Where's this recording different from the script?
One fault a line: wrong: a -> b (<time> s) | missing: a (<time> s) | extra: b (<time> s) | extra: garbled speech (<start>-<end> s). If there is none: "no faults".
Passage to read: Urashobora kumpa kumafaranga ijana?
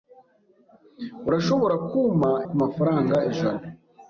no faults